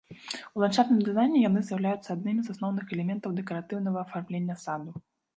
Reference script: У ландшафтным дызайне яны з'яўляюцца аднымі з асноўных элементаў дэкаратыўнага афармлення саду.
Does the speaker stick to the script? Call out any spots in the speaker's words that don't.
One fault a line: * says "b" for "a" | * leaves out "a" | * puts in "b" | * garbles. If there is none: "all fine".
all fine